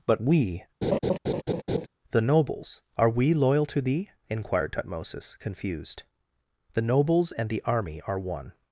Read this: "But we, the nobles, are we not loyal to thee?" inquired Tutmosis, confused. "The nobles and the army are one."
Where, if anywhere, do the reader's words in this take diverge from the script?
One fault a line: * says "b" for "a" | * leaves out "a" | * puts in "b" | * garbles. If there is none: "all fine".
* leaves out "not"